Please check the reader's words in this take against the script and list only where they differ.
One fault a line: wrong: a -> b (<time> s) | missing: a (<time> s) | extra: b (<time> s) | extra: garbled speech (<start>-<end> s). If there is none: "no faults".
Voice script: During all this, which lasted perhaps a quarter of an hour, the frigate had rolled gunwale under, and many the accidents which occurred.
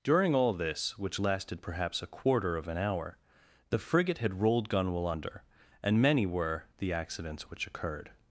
extra: were (6.3 s)